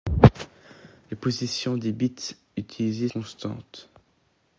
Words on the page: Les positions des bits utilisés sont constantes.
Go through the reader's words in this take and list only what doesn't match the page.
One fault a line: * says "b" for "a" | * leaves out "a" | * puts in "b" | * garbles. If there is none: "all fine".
* leaves out "sont"